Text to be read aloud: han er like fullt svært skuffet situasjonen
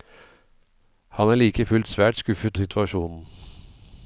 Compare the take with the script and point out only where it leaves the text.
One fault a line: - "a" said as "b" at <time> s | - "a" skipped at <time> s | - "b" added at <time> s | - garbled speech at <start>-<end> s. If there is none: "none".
none